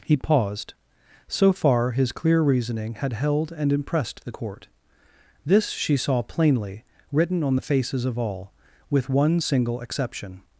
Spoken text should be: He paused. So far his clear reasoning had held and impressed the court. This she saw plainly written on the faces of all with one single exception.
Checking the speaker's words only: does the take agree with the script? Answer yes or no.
yes